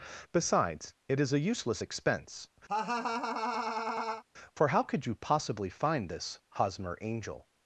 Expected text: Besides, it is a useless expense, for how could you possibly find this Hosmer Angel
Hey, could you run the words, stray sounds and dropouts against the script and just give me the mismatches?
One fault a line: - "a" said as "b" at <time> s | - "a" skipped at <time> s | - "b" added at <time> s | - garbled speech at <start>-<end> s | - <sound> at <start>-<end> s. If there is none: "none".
- laugh at 2.7-4.2 s